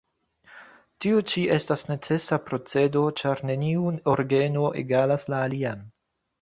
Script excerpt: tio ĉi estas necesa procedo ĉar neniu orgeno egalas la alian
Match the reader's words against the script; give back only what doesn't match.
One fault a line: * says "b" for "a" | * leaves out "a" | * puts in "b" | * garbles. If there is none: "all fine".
all fine